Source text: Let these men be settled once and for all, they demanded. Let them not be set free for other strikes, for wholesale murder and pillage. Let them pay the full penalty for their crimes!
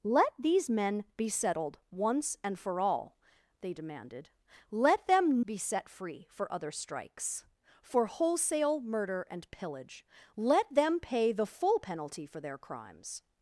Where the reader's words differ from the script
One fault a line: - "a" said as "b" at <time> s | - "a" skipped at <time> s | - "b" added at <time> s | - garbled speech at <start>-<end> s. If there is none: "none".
- "not" skipped at 5.5 s